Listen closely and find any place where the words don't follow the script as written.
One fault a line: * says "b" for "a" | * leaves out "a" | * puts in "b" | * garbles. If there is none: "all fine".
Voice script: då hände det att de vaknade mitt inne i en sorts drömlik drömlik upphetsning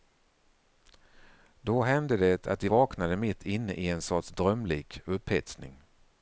* leaves out "drömlik"